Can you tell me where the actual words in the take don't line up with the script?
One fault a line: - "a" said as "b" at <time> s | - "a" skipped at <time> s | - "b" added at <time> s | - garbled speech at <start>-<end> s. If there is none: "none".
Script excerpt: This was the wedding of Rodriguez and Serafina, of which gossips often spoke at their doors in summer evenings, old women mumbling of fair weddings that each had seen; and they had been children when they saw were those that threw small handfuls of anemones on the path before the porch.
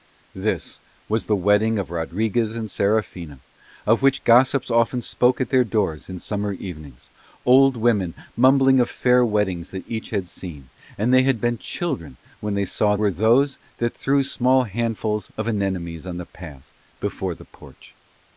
none